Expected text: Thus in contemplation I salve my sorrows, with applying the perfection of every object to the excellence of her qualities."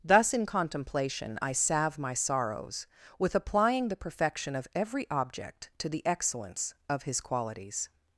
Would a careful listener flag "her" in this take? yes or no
yes